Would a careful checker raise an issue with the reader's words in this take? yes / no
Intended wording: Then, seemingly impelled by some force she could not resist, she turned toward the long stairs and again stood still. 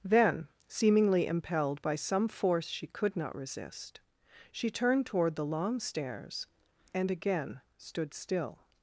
no